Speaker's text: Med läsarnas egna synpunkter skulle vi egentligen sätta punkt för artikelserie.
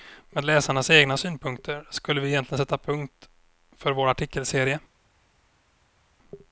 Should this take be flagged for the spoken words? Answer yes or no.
yes